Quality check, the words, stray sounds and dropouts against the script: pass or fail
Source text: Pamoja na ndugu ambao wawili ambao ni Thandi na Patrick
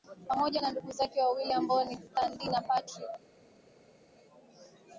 fail